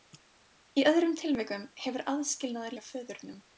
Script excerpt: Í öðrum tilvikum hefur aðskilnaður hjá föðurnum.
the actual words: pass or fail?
pass